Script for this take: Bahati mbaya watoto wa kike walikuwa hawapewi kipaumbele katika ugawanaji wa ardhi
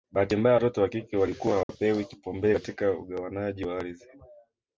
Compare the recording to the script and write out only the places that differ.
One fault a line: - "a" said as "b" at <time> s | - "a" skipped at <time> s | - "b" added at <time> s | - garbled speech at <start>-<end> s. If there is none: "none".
none